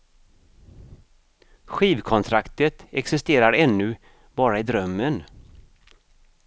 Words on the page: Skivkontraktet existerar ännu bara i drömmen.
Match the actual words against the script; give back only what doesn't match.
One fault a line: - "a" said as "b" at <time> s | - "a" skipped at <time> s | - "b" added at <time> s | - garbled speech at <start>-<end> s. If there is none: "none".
none